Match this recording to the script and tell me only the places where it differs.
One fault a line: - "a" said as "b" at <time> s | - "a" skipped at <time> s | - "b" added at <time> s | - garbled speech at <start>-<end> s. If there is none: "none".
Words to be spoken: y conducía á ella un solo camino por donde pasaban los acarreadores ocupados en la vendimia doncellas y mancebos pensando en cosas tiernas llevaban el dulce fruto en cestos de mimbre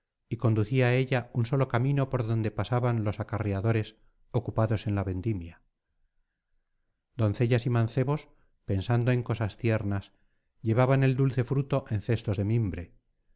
none